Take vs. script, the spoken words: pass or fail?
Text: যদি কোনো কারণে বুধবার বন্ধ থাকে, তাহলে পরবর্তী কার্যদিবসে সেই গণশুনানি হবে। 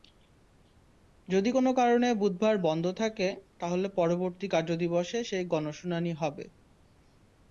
pass